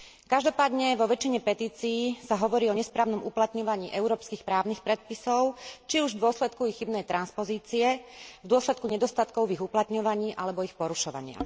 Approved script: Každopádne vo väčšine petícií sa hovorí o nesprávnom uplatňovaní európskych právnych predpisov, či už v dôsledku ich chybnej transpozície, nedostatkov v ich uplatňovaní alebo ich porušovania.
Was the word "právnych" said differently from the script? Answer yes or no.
no